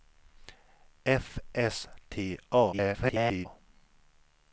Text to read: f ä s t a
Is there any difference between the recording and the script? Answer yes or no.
yes